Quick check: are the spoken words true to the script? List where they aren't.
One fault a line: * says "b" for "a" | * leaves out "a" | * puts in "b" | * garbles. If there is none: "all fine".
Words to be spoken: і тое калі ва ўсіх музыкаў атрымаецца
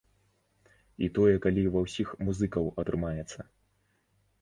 all fine